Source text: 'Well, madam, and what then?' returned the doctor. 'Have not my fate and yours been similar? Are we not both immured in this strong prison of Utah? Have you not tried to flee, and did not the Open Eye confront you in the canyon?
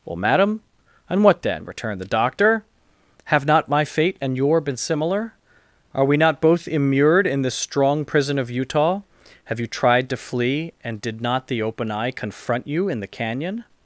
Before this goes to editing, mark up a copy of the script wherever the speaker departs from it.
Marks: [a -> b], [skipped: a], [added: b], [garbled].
'Well, madam, and what then?' returned the doctor. 'Have not my fate and [yours -> your] been similar? Are we not both immured in this strong prison of Utah? Have you [skipped: not] tried to flee, and did not the Open Eye confront you in the canyon?